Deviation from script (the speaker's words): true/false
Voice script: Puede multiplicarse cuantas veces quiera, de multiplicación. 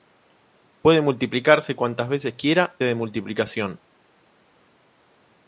false